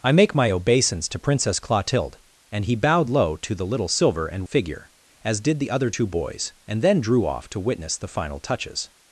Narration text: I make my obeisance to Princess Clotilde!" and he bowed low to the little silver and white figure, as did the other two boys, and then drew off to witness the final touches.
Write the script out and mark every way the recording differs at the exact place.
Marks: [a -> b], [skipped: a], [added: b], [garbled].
I make my obeisance to Princess Clotilde!" and he bowed low to the little silver and [skipped: white] figure, as did the other two boys, and then drew off to witness the final touches.